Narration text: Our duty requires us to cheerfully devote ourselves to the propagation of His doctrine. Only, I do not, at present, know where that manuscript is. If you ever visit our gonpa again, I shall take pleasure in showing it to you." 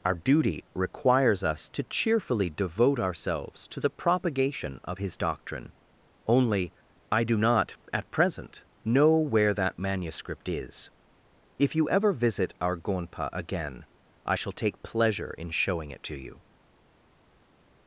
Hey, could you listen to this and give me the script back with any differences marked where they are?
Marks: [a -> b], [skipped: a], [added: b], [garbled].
Our duty requires us to cheerfully devote ourselves to the propagation of His doctrine. Only, I do not, at present, know where that manuscript is. If you ever visit our gonpa again, I shall take pleasure in showing it to you."